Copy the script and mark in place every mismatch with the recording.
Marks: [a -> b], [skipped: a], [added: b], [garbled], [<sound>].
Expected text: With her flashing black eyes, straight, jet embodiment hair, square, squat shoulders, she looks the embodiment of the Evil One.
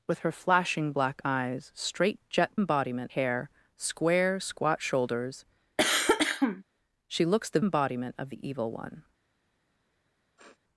With her flashing black eyes, straight, jet embodiment hair, square, squat shoulders, [cough] she looks the embodiment of the Evil One. [sniff]